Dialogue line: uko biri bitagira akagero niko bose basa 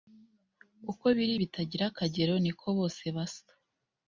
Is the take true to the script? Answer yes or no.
yes